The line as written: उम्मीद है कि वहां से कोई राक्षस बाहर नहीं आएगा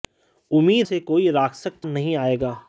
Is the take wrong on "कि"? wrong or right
wrong